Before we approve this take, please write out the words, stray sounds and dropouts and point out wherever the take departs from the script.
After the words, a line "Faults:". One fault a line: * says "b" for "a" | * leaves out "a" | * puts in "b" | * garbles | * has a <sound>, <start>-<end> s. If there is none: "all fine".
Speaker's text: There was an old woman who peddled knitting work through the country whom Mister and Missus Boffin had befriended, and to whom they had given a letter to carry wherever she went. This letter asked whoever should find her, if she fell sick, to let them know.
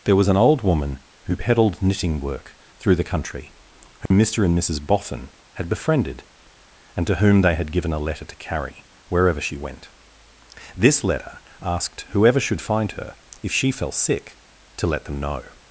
There was an old woman who peddled knitting work through the country whom Mister and Missus Boffin had befriended, and to whom they had given a letter to carry wherever she went. This letter asked whoever should find her, if she fell sick, to let them know.
Faults:
* has a dropout, 4.1-4.1 s